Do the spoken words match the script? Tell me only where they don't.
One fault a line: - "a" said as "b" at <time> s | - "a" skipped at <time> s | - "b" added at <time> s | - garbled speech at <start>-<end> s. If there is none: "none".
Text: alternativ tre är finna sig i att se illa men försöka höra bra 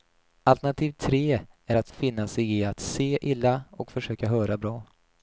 - "att" added at 1.8 s
- "men" said as "och" at 3.7 s